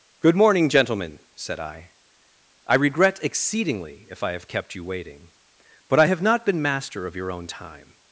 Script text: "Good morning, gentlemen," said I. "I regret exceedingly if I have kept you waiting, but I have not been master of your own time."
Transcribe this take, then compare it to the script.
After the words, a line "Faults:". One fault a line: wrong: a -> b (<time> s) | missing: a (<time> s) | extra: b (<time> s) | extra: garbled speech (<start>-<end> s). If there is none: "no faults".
"Good morning, gentlemen," said I. "I regret exceedingly if I have kept you waiting, but I have not been master of your own time."
Faults:
no faults